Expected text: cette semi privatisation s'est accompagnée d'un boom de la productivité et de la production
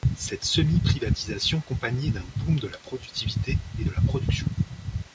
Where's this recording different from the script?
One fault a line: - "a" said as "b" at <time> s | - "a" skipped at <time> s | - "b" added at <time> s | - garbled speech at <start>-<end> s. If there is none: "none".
- "s'est" skipped at 1.6 s